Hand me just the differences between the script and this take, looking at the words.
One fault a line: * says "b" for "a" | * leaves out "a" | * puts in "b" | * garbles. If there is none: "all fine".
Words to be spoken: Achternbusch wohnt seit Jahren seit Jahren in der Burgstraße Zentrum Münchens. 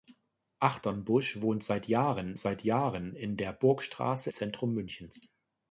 all fine